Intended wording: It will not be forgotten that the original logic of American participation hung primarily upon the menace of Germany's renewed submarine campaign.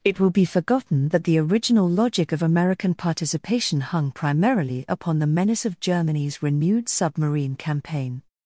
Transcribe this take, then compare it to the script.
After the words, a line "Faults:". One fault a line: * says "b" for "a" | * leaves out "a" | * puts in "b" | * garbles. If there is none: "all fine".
It will be forgotten that the original logic of American participation hung primarily upon the menace of Germany's renewed submarine campaign.
Faults:
* leaves out "not"